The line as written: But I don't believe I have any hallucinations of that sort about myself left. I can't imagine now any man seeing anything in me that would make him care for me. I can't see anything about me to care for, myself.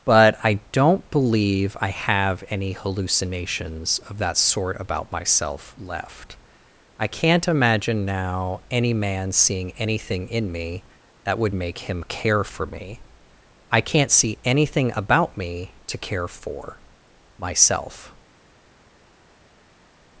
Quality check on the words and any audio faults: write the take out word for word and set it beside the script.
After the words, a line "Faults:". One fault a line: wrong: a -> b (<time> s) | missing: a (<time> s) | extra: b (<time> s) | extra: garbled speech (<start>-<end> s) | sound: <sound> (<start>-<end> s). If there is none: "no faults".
But I don't believe I have any hallucinations of that sort about myself left. I can't imagine now any man seeing anything in me that would make him care for me. I can't see anything about me to care for, myself.
Faults:
no faults